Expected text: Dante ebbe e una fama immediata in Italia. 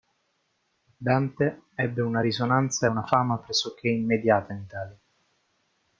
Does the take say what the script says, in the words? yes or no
no